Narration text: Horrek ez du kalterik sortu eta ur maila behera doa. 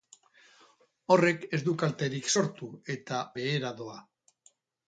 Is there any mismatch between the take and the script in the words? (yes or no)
yes